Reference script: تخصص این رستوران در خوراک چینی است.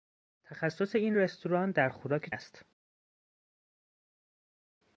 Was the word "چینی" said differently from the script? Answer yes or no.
yes